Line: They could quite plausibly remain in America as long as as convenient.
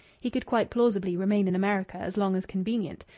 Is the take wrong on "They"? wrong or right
wrong